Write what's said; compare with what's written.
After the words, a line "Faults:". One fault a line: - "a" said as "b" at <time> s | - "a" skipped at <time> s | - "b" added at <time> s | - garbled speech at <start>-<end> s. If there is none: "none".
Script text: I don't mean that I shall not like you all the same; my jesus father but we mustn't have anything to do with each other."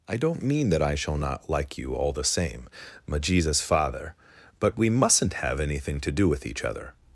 I don't mean that I shall not like you all the same; my jesus father but we mustn't have anything to do with each other."
Faults:
none